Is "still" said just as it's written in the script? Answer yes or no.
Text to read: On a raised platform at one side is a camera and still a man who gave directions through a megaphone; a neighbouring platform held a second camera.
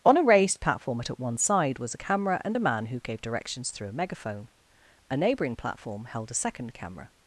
no